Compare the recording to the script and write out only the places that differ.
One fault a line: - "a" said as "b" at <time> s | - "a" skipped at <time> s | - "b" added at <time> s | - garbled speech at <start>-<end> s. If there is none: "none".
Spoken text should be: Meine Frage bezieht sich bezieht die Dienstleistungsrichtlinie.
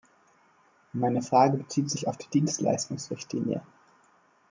- "bezieht" said as "auf" at 2.1 s